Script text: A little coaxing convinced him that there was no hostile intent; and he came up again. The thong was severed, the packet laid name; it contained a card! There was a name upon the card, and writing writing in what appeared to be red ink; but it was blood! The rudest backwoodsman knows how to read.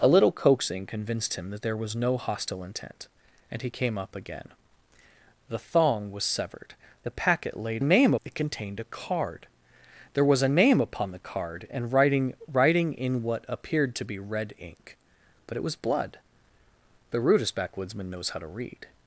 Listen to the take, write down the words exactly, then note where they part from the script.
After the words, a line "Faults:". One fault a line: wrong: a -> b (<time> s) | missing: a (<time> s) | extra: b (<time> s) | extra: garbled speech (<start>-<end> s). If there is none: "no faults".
A little coaxing convinced him that there was no hostile intent; and he came up again. The thong was severed, the packet laid name; it contained a card! There was a name upon the card, and writing writing in what appeared to be red ink; but it was blood! The rudest backwoodsman knows how to read.
Faults:
no faults